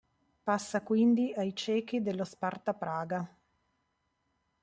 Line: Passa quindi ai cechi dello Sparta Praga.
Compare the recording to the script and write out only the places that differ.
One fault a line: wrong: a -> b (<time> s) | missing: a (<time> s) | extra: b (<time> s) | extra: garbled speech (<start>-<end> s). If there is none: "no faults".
no faults